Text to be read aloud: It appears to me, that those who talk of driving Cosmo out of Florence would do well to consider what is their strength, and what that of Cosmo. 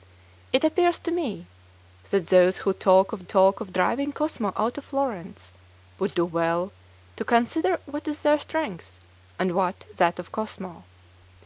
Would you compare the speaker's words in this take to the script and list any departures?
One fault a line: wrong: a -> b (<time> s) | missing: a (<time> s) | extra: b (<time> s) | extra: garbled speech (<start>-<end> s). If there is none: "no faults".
extra: talk of (3.2 s)